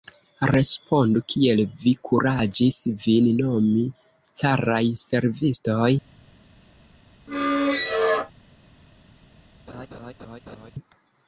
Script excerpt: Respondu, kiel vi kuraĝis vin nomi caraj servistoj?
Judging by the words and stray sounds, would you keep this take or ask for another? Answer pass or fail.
fail